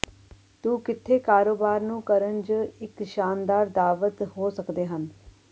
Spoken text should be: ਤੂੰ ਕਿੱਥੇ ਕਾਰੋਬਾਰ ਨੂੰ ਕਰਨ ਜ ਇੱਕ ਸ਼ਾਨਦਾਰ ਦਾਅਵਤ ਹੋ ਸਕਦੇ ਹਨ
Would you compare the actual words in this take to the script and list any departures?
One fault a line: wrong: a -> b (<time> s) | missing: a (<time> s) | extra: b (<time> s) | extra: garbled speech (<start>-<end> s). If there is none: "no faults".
no faults